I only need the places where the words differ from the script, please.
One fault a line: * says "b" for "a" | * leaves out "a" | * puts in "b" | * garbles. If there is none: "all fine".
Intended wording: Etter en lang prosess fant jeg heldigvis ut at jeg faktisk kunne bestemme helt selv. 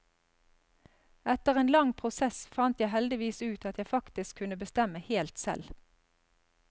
all fine